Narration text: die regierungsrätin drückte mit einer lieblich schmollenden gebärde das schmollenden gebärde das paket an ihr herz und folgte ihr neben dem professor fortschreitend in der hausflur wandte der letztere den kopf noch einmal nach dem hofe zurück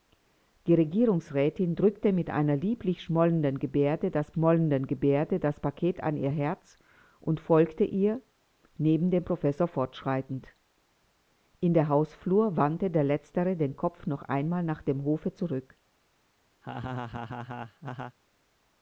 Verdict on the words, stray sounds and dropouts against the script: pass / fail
fail